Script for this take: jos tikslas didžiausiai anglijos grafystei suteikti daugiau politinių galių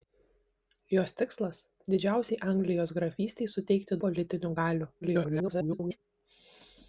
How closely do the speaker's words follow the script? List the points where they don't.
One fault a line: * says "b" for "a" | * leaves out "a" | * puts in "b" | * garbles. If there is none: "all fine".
* leaves out "daugiau"
* garbles